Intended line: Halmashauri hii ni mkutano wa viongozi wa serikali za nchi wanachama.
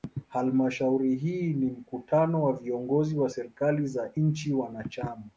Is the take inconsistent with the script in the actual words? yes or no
no